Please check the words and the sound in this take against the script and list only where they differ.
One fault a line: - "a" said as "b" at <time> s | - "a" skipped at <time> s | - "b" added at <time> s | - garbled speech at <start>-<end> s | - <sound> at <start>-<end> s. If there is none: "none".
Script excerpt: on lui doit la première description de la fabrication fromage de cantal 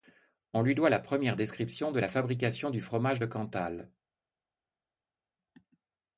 - "du" added at 2.7 s